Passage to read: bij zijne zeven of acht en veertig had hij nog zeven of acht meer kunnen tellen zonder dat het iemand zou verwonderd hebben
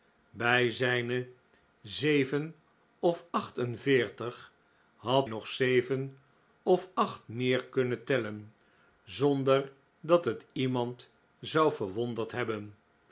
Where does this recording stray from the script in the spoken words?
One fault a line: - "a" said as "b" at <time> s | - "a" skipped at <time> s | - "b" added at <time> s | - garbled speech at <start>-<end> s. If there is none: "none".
- "hij" skipped at 5.3 s